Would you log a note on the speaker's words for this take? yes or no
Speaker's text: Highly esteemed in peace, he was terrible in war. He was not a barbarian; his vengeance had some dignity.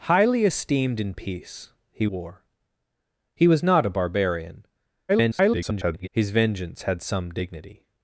yes